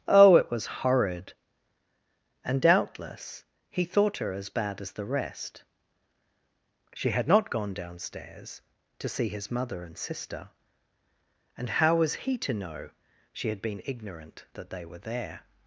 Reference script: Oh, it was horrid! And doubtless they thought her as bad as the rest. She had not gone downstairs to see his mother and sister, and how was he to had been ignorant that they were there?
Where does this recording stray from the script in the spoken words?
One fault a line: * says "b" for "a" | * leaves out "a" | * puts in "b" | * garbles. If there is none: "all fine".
* says "he" for "they"
* puts in "know she"